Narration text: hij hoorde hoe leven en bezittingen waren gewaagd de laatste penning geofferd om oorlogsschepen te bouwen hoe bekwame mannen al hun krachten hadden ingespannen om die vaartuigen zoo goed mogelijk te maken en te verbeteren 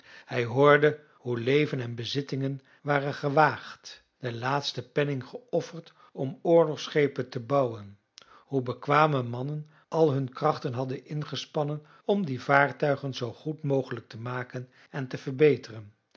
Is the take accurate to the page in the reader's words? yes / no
yes